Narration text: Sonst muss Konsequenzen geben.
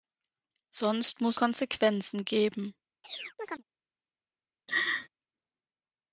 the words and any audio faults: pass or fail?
fail